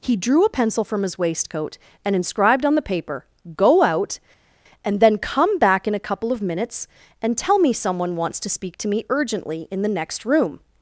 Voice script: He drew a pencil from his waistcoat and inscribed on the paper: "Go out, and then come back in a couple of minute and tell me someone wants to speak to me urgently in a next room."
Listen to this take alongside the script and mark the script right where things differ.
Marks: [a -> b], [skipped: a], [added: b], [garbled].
He drew a pencil from his waistcoat and inscribed on the paper: "Go out, and then come back in a couple of [minute -> minutes] and tell me someone wants to speak to me urgently in [a -> the] next room."